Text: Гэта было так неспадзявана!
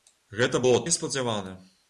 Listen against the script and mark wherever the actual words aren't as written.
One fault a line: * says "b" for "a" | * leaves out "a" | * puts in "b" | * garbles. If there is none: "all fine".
* leaves out "так"